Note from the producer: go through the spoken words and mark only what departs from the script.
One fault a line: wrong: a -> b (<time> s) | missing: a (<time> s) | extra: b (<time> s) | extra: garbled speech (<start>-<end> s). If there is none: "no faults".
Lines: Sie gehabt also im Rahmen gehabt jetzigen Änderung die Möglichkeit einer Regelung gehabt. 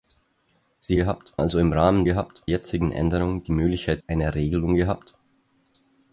no faults